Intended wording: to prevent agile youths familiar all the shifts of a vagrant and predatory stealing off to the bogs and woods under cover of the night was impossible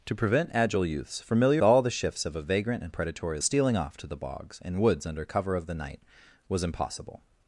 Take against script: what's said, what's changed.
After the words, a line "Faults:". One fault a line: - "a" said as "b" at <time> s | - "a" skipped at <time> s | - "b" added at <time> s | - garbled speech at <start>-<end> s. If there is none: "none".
to prevent agile youths familiar all the shifts of a vagrant and predatory stealing off to the bogs and woods under cover of the night was impossible
Faults:
none